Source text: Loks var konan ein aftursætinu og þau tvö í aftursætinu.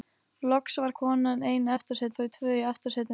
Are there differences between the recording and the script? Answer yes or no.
no